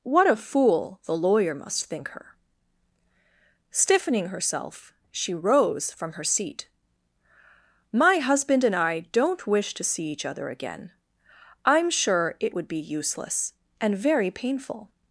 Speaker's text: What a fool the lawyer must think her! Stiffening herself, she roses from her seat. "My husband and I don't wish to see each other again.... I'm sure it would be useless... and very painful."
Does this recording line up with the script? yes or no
no